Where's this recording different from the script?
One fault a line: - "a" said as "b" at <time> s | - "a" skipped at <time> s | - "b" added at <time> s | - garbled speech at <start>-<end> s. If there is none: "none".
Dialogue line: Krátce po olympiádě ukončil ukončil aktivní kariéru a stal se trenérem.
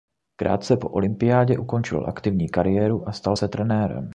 - "ukončil" skipped at 2.0 s